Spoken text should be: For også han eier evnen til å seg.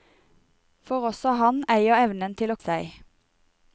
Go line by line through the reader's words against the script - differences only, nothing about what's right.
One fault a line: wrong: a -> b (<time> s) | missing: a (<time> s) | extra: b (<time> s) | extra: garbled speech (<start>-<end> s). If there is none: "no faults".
no faults